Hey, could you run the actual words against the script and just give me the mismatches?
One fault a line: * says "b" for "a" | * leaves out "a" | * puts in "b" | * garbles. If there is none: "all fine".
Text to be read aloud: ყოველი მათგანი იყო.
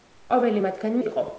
all fine